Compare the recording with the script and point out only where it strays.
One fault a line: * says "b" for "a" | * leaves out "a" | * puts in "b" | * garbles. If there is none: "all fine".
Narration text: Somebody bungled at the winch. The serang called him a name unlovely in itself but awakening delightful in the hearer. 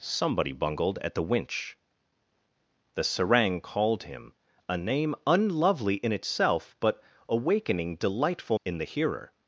all fine